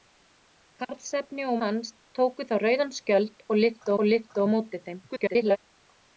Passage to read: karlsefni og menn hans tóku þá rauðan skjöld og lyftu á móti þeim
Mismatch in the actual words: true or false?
true